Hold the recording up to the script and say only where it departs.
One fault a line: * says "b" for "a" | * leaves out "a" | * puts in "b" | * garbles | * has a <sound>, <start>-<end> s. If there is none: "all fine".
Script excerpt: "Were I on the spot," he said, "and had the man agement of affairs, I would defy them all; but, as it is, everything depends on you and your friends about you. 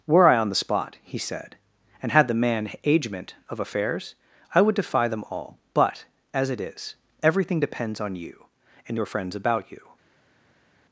all fine